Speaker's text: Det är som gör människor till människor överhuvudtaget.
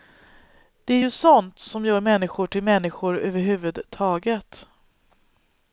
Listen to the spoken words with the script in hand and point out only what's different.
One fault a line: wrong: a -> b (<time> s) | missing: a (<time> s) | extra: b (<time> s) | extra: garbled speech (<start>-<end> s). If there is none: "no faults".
extra: ju sånt (1.0 s)